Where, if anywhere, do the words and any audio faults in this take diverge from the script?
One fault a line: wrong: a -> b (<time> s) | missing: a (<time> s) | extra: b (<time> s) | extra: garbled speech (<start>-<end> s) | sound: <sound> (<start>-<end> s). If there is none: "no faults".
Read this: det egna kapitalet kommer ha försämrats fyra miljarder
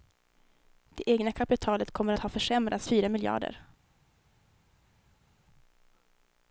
no faults